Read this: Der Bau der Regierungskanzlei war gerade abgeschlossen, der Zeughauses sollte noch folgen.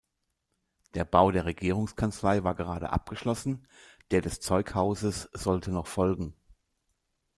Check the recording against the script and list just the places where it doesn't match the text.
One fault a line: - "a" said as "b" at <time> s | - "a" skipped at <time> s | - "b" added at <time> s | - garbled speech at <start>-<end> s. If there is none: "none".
- "des" added at 4.2 s